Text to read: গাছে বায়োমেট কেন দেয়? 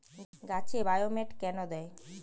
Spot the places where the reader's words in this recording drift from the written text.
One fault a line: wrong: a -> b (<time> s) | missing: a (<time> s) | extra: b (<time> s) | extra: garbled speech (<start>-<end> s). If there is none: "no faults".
no faults